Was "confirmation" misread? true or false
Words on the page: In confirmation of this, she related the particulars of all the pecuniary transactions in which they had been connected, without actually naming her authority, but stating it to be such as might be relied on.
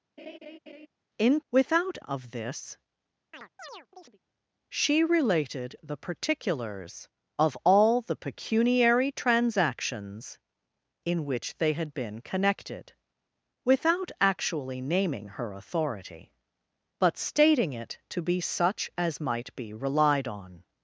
true